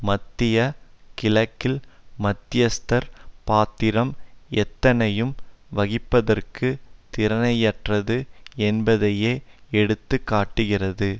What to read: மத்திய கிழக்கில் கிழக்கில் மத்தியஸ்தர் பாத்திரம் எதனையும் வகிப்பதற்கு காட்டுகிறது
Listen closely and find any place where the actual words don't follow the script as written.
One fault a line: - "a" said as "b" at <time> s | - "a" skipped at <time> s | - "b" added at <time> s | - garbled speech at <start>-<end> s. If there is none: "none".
- "கிழக்கில்" skipped at 1.8 s
- "திராணியற்றது என்பதையே எடுத்து" added at 7.1 s